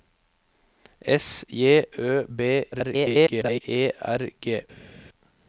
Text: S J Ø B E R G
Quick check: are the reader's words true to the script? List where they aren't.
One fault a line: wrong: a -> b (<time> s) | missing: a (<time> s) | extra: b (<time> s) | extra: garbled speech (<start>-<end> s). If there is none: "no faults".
extra: garbled speech (2.7-3.6 s)